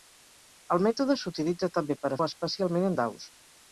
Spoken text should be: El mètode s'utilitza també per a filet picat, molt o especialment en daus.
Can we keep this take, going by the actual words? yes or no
no